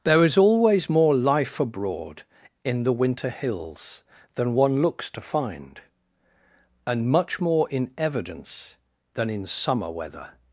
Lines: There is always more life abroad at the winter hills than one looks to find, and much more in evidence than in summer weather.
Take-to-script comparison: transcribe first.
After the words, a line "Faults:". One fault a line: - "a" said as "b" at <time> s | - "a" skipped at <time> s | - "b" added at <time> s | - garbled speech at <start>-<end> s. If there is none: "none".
There is always more life abroad in the winter hills than one looks to find, and much more in evidence than in summer weather.
Faults:
- "at" said as "in" at 2.6 s